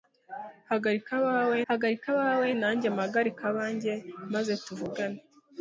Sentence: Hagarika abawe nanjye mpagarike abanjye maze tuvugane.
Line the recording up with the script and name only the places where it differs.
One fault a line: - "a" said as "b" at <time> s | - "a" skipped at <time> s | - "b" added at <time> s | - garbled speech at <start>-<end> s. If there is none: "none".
- "hagarika abawe" added at 1.7 s